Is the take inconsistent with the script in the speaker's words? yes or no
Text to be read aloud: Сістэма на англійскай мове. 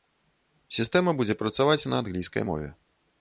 yes